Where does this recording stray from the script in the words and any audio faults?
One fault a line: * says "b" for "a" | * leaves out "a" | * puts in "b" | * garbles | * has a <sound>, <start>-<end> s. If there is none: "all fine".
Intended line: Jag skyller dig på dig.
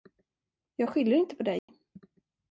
* says "inte" for "dig"
* has a dropout, 1.6-1.7 s